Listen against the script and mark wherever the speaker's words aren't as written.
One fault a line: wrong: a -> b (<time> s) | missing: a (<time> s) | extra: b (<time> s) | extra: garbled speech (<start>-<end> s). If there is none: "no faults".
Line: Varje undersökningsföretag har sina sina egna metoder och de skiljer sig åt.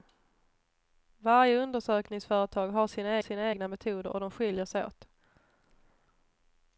no faults